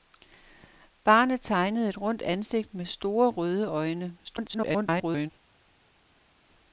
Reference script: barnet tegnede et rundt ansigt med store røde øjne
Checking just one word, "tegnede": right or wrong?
right